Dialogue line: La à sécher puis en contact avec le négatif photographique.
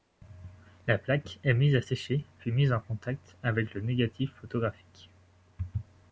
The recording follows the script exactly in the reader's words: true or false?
false